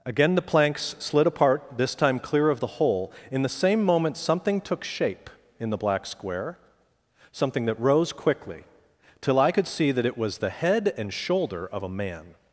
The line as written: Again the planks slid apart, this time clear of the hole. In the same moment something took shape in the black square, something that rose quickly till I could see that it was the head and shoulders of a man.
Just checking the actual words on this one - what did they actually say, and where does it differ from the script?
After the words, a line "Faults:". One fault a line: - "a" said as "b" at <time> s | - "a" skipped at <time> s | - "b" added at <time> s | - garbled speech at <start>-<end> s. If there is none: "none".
Again the planks slid apart, this time clear of the hole. In the same moment something took shape in the black square, something that rose quickly till I could see that it was the head and shoulder of a man.
Faults:
- "shoulders" said as "shoulder" at 11.1 s